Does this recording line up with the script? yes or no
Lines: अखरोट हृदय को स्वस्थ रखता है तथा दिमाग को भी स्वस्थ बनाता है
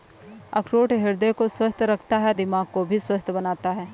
no